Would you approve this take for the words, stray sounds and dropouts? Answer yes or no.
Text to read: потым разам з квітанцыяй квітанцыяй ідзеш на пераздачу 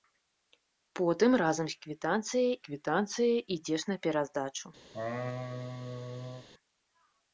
no